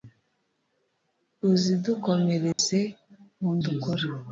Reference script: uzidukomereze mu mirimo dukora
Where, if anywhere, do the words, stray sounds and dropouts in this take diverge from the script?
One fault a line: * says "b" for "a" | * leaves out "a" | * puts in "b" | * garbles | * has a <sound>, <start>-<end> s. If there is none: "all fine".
* has a dropout, 2.5-2.6 s
* leaves out "mirimo"